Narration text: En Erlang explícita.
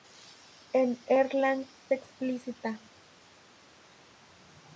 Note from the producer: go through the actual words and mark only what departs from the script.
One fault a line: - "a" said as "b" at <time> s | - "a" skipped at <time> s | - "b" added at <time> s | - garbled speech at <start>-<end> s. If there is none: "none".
none